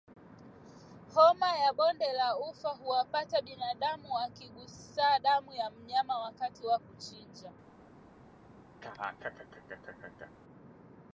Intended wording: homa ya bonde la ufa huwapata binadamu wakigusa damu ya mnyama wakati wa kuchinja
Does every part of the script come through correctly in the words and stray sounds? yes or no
no